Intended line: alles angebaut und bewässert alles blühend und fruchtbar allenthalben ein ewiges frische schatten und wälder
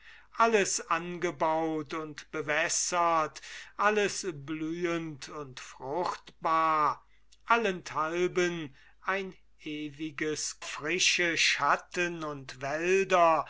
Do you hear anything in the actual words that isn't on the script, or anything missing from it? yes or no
no